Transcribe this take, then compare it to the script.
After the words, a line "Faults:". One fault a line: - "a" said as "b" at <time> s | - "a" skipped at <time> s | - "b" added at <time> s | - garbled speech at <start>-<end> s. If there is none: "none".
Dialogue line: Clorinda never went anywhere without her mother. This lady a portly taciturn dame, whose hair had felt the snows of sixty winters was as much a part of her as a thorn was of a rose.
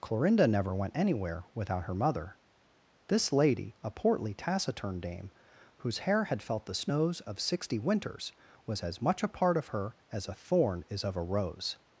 Clorinda never went anywhere without her mother. This lady a portly taciturn dame, whose hair had felt the snows of sixty winters was as much a part of her as a thorn is of a rose.
Faults:
- "was" said as "is" at 10.9 s